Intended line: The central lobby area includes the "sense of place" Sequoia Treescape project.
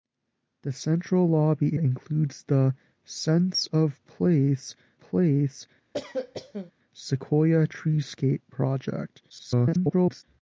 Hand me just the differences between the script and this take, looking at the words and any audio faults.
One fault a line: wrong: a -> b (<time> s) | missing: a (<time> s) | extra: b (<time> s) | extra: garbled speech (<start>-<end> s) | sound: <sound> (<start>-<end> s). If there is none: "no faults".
missing: area (1.8 s)
extra: place (5.0 s)
sound: cough (5.9-6.7 s)
extra: garbled speech (9.3-10.2 s)